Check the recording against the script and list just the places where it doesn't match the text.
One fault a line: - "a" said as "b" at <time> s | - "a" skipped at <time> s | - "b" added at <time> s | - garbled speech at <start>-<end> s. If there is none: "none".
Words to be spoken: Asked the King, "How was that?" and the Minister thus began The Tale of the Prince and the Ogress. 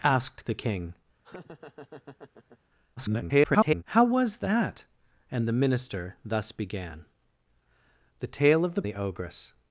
- garbled speech at 3.0-3.8 s
- "Prince and" skipped at 8.8 s